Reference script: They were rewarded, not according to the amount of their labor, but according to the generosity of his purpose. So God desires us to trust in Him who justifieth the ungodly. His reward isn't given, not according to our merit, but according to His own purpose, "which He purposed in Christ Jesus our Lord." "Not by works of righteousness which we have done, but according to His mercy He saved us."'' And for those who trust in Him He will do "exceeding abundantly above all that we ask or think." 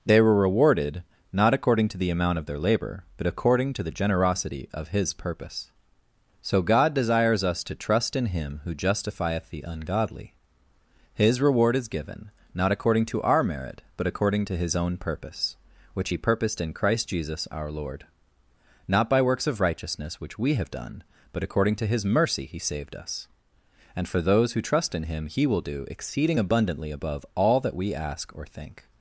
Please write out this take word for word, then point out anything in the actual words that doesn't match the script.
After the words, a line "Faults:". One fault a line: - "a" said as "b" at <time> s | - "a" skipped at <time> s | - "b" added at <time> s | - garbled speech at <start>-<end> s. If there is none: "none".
They were rewarded, not according to the amount of their labor, but according to the generosity of his purpose. So God desires us to trust in Him who justifieth the ungodly. His reward is given, not according to our merit, but according to His own purpose, "which He purposed in Christ Jesus our Lord." "Not by works of righteousness which we have done, but according to His mercy He saved us."'' And for those who trust in Him He will do "exceeding abundantly above all that we ask or think."
Faults:
- "isn't" said as "is" at 11.8 s